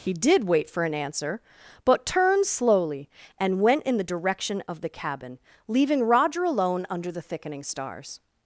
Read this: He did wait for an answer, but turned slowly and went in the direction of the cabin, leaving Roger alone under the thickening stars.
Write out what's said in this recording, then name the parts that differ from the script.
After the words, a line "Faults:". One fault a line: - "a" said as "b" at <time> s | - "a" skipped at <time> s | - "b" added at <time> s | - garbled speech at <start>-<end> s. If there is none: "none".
He did wait for an answer, but turned slowly and went in the direction of the cabin, leaving Roger alone under the thickening stars.
Faults:
none